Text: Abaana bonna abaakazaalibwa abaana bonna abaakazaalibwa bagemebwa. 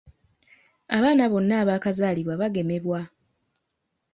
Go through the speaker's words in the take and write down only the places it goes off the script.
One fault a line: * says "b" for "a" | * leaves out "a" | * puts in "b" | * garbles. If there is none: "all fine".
* leaves out "abaana bonna abaakazaalibwa"